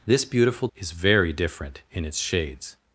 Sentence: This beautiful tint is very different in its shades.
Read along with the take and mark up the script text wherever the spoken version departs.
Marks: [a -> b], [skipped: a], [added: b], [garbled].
This beautiful [skipped: tint] is very different in its shades.